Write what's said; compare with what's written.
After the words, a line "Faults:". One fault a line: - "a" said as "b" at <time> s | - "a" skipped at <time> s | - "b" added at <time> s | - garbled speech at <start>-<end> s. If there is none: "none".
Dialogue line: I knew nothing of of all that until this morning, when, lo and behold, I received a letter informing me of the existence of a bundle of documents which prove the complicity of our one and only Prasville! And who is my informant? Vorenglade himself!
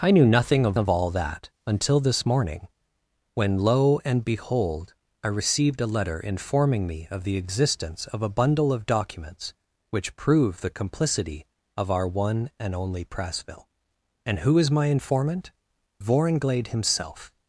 I knew nothing of of all that until this morning, when, lo and behold, I received a letter informing me of the existence of a bundle of documents which prove the complicity of our one and only Prasville! And who is my informant? Vorenglade himself!
Faults:
none